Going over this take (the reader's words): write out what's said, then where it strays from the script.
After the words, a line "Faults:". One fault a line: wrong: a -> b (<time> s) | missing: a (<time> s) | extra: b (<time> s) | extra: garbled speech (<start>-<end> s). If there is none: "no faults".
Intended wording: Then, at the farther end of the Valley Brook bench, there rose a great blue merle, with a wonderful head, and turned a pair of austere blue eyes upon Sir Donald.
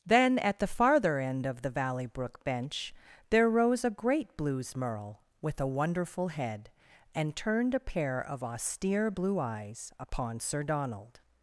Then, at the farther end of the Valley Brook bench, there rose a great blues merle, with a wonderful head, and turned a pair of austere blue eyes upon Sir Donald.
Faults:
wrong: blue -> blues (4.3 s)